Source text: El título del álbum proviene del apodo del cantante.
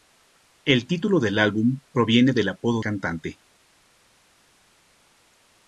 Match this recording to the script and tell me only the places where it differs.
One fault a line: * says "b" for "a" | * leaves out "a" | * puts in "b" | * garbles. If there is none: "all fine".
* leaves out "del"